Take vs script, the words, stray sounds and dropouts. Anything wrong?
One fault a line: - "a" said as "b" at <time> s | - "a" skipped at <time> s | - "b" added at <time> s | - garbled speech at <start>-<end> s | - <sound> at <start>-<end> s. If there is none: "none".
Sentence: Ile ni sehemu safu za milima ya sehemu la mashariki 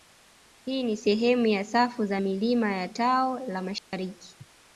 - "Ile" said as "Hii" at 0.7 s
- "ya" added at 1.5 s
- "sehemu" said as "tao" at 2.9 s
- dropout at 3.8-3.9 s